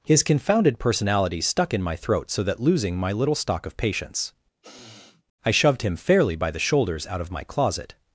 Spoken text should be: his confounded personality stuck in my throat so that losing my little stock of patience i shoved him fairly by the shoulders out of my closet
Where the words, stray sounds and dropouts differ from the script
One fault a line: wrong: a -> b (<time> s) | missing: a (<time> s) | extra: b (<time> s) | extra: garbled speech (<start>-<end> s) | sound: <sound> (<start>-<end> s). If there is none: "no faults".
sound: sniff (4.6-5.2 s)